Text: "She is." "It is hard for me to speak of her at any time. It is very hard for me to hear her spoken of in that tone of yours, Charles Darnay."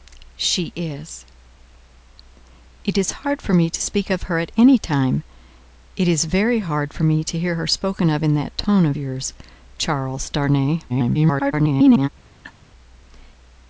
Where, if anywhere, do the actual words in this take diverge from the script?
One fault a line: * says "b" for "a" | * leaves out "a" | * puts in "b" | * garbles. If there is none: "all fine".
* garbles